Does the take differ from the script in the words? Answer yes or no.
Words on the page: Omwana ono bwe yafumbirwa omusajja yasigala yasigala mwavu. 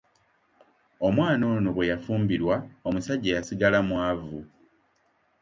yes